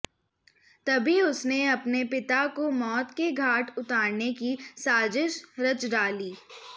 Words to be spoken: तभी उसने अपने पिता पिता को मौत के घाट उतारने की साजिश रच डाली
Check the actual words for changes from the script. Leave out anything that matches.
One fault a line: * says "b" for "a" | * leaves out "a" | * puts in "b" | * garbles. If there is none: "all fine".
* leaves out "पिता"